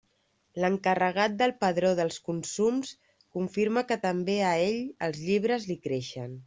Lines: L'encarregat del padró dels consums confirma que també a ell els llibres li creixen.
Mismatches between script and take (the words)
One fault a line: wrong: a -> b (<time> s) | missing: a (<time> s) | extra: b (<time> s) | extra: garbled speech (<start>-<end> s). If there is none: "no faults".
no faults